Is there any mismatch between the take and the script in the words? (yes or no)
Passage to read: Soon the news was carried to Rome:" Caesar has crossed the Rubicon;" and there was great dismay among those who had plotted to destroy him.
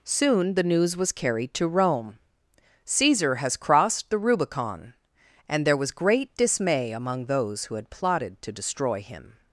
no